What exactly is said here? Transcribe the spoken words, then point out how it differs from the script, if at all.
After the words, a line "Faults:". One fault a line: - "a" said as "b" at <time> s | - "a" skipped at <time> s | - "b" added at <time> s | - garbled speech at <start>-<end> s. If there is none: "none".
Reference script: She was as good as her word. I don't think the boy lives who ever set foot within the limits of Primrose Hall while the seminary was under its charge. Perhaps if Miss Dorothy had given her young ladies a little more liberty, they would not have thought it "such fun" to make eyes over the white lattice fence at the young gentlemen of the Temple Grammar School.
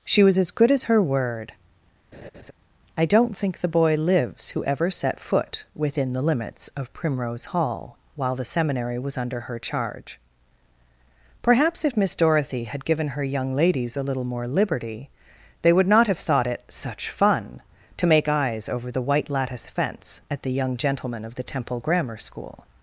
She was as good as her word. I don't think the boy lives who ever set foot within the limits of Primrose Hall while the seminary was under her charge. Perhaps if Miss Dorothy had given her young ladies a little more liberty, they would not have thought it "such fun" to make eyes over the white lattice fence at the young gentlemen of the Temple Grammar School.
Faults:
- "its" said as "her" at 9.4 s